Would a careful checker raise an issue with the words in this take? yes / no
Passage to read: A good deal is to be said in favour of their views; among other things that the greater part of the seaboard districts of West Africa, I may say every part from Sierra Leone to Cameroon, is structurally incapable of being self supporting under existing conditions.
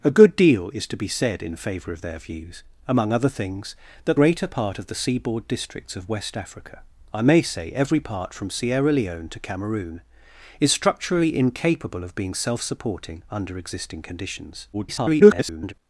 yes